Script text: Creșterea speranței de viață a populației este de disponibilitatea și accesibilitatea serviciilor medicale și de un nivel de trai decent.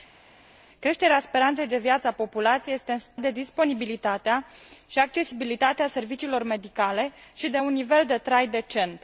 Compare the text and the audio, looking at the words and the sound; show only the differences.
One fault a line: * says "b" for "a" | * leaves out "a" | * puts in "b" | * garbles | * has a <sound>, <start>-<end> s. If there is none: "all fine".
all fine